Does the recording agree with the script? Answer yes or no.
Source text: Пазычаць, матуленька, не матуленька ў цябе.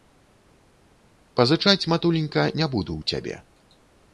no